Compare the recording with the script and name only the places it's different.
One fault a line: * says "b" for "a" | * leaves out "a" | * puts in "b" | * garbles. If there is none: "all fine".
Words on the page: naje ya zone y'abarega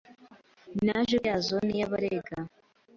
all fine